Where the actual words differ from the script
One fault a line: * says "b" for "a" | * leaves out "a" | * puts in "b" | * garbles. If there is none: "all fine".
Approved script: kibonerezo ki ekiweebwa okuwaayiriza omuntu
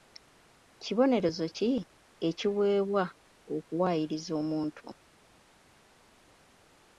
all fine